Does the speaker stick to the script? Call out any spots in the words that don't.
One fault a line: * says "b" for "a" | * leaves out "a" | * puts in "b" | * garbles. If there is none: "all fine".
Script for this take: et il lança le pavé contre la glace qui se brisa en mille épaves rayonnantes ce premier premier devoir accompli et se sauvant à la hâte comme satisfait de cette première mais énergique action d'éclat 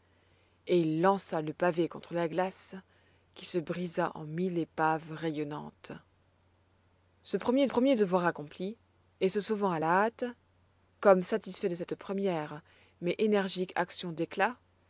all fine